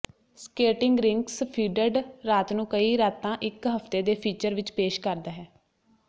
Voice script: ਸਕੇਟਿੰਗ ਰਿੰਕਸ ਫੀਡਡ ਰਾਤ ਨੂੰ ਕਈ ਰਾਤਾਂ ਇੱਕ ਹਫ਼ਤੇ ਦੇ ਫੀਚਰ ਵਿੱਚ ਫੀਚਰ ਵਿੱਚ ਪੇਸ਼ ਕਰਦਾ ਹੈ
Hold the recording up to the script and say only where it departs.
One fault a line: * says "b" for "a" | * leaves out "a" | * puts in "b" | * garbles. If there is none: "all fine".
* leaves out "ਫੀਚਰ ਵਿੱਚ"